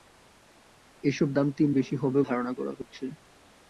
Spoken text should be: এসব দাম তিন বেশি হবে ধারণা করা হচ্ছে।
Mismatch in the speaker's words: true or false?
false